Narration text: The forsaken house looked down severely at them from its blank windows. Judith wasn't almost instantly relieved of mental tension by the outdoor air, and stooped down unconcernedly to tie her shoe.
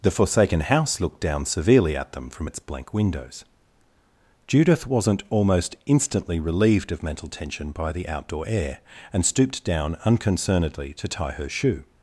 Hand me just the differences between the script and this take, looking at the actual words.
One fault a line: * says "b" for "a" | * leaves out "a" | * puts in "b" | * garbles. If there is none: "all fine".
all fine